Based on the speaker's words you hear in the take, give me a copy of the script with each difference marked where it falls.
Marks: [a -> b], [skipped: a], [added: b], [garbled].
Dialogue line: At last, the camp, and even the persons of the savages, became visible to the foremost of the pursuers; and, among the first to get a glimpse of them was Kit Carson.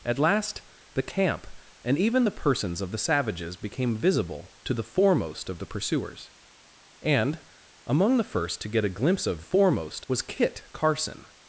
At last, the camp, and even the persons of the savages, became visible to the foremost of the pursuers; and, among the first to get a glimpse of [them -> foremost] was Kit Carson.